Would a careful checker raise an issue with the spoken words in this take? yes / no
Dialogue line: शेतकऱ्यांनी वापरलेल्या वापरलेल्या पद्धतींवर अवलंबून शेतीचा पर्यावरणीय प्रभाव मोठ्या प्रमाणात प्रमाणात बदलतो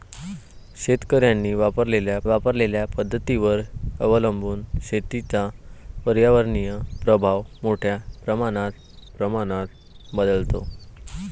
no